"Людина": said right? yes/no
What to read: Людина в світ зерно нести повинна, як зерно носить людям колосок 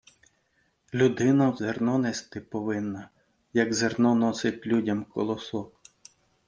yes